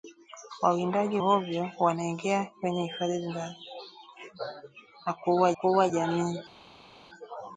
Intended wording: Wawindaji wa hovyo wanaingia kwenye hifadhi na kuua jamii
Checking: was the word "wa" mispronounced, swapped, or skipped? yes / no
yes